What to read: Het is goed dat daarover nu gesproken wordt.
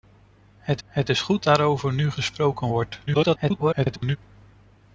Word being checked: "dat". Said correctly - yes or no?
no